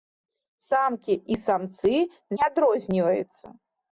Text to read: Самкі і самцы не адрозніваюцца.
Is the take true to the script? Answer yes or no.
yes